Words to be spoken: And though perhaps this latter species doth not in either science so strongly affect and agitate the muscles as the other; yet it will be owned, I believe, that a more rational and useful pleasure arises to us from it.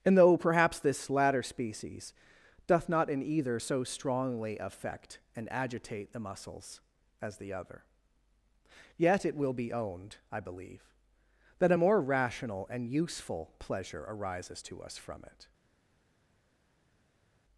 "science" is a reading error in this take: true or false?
true